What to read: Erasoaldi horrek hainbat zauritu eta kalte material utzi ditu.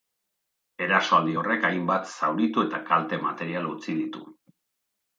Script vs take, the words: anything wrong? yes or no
no